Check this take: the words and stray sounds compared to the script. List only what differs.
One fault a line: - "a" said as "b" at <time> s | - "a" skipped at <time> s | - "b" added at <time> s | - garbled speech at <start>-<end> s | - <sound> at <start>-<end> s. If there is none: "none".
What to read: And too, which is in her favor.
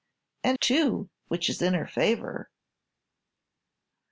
none